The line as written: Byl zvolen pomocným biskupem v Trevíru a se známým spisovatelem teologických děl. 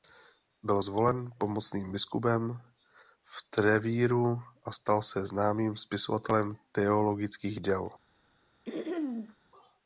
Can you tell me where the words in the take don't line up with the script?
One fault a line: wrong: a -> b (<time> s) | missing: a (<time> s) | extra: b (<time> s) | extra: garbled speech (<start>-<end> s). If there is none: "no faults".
extra: stal (4.7 s)